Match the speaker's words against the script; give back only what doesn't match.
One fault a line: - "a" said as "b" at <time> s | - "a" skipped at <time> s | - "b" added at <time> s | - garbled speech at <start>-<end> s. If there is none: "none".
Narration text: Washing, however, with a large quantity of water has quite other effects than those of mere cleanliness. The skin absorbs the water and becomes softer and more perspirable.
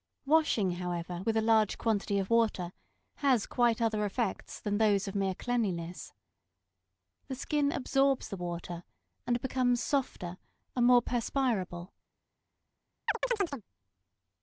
none